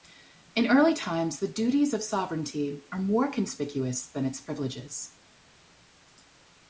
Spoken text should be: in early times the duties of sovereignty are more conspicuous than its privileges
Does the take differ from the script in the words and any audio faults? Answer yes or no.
no